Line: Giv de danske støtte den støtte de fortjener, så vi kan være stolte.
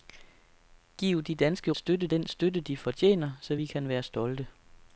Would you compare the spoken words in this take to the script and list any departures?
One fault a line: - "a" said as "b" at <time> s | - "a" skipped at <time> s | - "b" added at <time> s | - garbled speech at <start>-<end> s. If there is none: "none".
none